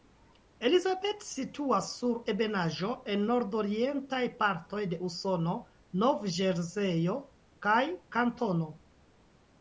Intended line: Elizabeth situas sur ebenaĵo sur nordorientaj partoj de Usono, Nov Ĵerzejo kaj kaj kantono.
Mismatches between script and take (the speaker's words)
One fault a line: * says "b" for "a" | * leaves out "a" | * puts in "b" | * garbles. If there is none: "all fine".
* says "en" for "sur"
* leaves out "kaj"